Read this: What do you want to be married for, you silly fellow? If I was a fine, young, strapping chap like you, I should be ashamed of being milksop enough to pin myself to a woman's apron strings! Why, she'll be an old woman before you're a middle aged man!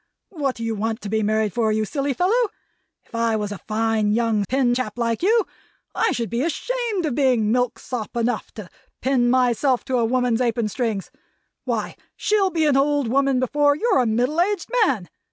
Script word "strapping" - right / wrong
wrong